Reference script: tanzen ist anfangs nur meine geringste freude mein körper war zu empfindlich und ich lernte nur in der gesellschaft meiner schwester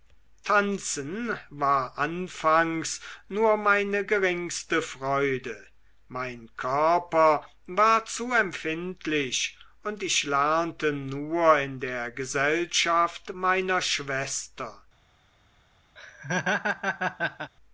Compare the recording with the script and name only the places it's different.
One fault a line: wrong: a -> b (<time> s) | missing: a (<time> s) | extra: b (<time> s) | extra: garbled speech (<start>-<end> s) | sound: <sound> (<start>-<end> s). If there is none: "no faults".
wrong: ist -> war (1.5 s)
sound: laugh (16.0-17.5 s)